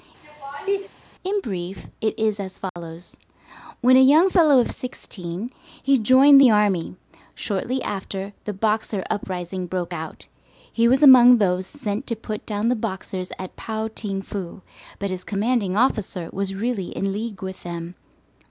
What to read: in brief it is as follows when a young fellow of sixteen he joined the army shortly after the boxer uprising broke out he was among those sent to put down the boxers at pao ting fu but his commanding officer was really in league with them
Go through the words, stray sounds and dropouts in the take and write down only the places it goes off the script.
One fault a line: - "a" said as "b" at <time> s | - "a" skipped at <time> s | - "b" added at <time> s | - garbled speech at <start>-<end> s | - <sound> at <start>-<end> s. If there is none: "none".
- laugh at 0.2-0.9 s
- dropout at 2.7-2.8 s